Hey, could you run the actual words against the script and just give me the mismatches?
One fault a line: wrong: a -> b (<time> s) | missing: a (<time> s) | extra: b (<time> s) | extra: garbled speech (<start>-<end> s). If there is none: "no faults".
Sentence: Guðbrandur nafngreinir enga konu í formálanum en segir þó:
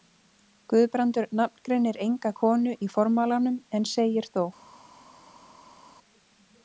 no faults